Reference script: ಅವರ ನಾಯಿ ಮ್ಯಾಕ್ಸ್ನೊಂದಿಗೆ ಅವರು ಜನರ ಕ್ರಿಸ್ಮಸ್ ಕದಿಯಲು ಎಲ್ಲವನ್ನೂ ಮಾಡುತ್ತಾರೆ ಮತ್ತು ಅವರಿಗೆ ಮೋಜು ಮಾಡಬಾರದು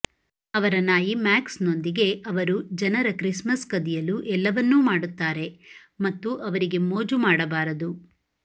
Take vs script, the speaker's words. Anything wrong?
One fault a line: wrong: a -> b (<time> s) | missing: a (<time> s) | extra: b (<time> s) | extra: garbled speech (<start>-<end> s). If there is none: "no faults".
no faults